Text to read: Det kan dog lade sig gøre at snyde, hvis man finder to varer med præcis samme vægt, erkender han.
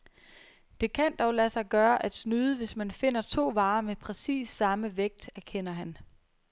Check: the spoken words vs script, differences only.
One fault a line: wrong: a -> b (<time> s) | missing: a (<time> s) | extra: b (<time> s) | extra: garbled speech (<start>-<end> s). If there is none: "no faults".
no faults